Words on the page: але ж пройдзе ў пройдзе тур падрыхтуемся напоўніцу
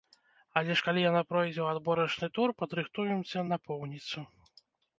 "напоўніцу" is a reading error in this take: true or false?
false